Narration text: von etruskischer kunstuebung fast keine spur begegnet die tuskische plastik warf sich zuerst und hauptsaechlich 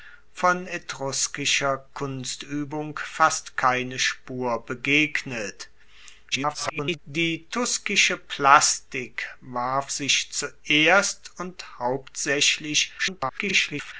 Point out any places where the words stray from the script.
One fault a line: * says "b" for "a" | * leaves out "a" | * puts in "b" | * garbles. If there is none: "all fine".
* garbles
* garbles